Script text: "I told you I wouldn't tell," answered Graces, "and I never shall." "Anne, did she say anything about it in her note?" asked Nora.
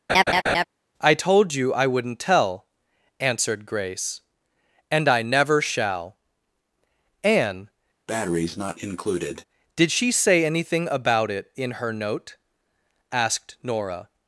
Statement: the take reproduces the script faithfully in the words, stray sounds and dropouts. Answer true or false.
false